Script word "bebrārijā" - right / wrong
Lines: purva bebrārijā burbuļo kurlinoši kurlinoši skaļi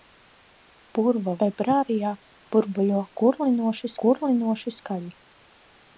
right